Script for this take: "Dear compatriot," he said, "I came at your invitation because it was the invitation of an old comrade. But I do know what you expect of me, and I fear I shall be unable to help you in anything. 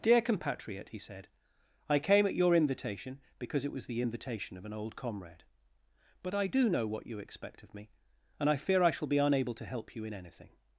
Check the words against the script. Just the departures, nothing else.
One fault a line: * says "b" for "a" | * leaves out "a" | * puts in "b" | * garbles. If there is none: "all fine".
all fine